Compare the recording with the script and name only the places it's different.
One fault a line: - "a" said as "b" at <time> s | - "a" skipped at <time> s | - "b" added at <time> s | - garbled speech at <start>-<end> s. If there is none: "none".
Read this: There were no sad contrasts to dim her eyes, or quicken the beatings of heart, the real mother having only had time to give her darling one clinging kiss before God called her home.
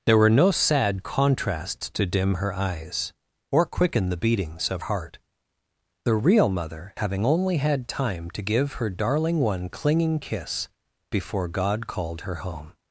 none